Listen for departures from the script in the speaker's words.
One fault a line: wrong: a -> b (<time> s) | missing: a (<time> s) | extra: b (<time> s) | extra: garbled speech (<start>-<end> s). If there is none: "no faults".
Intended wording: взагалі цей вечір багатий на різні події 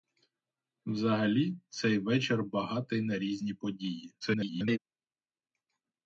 extra: garbled speech (4.2-4.8 s)